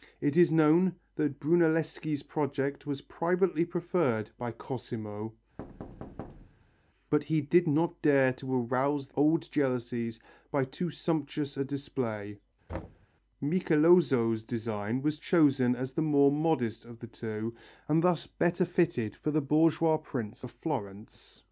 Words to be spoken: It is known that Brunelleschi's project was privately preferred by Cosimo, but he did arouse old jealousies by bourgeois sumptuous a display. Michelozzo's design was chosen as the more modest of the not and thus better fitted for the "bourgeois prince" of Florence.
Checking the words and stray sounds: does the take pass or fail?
fail